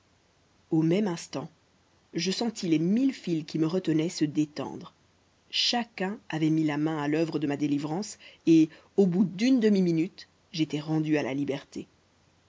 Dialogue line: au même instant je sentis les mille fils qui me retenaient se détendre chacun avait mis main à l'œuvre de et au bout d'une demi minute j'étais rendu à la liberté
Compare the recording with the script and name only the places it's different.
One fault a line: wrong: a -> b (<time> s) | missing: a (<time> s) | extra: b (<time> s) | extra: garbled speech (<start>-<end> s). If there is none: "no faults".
extra: la (6.6 s)
extra: ma délivrance (7.4 s)